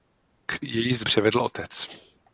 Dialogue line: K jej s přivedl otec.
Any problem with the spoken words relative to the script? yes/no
no